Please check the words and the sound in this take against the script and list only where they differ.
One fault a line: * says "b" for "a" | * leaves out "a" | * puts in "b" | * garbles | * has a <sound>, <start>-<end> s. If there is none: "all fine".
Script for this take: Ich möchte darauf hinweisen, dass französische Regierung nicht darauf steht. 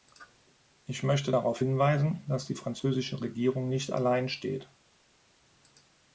* puts in "die"
* says "allein" for "darauf"